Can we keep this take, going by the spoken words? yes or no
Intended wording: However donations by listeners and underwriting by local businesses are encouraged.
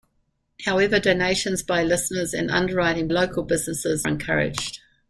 no